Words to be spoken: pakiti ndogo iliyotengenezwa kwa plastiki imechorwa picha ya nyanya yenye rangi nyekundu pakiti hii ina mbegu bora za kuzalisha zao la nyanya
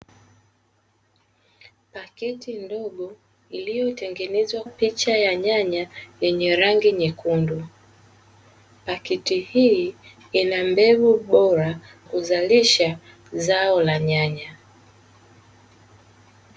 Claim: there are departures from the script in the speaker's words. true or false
true